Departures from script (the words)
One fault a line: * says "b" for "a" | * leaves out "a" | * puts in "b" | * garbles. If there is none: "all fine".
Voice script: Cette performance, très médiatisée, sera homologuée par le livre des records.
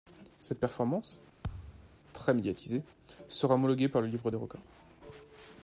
all fine